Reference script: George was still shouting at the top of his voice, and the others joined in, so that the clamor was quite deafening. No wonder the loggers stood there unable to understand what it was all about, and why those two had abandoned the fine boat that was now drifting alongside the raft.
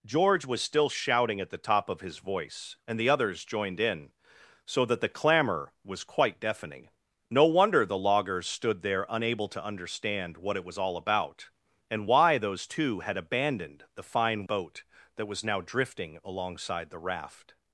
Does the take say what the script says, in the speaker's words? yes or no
yes